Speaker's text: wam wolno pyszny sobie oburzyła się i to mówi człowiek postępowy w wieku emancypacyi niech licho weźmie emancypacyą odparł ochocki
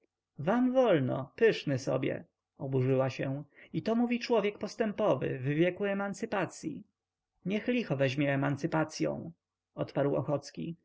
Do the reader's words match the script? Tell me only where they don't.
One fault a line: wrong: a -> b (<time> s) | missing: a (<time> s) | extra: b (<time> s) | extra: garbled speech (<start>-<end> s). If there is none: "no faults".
no faults